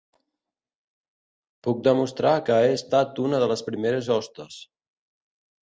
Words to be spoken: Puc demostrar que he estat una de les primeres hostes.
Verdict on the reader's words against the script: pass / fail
pass